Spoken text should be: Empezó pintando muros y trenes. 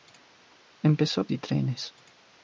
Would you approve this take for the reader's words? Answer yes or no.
no